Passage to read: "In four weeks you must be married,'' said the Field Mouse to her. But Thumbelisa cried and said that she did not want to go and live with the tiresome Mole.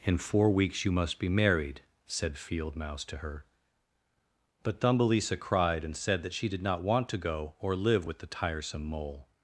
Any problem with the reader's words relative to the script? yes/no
yes